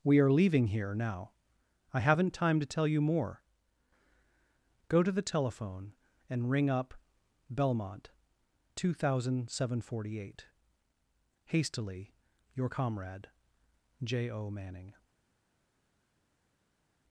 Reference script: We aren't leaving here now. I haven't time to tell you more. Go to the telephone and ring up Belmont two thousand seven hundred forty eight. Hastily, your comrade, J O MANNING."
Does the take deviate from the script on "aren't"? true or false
true